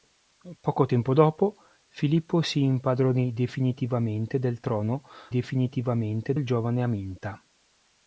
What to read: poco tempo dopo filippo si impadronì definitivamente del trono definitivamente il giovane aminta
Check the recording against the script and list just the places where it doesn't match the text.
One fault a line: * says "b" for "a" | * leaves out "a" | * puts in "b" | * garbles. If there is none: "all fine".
all fine